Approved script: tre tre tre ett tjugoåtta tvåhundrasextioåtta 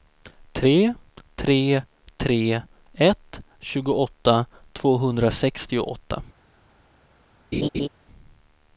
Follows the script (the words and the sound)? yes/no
no